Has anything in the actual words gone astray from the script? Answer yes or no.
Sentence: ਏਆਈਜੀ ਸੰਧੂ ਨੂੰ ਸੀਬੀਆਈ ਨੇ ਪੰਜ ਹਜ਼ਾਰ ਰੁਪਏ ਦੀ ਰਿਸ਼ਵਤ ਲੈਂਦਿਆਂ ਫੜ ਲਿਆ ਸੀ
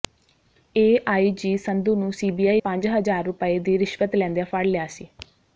yes